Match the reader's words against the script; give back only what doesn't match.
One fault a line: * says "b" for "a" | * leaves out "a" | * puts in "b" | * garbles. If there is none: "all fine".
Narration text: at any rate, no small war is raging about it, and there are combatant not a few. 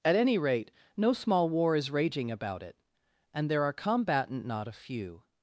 all fine